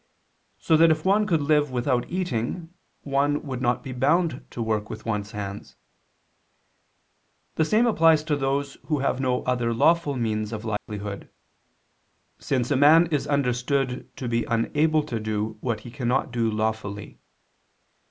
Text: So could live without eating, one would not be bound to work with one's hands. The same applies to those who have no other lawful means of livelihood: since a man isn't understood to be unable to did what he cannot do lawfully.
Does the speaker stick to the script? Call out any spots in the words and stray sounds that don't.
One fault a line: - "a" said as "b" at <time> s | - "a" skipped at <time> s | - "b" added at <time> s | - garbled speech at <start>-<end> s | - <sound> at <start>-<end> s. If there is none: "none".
- "that if one" added at 0.8 s
- dropout at 10.8-10.9 s
- "isn't" said as "is" at 13.1 s
- "did" said as "do" at 15.2 s